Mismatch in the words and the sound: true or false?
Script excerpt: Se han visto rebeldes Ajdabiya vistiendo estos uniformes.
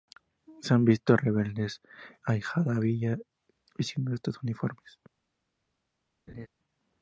true